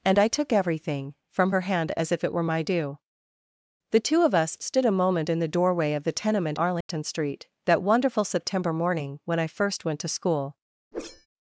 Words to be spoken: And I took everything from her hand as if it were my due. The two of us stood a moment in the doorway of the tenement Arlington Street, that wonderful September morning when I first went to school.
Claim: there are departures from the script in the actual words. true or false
false